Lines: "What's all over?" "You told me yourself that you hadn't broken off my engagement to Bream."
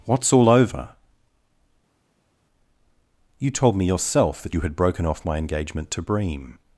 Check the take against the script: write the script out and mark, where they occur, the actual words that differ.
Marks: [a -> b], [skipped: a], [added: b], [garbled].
"What's all over?" "You told me yourself that you [hadn't -> had] broken off my engagement to Bream."